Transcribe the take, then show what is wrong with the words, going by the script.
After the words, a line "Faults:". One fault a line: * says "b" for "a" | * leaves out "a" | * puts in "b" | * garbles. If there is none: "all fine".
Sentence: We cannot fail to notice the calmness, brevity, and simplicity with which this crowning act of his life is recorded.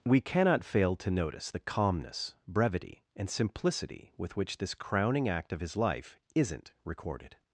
We cannot fail to notice the calmness, brevity, and simplicity with which this crowning act of his life isn't recorded.
Faults:
* says "isn't" for "is"